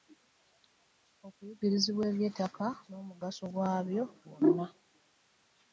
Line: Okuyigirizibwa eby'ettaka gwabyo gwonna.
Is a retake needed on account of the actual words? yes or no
yes